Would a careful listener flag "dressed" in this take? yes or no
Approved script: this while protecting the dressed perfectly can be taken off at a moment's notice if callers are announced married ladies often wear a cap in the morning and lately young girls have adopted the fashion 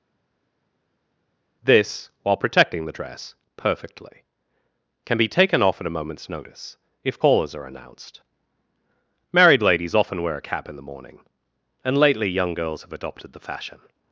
yes